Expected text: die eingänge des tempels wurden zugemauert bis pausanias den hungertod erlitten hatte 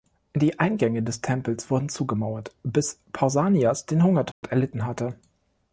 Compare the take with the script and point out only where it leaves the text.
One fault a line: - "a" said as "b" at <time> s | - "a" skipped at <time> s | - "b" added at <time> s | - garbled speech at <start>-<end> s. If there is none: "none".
none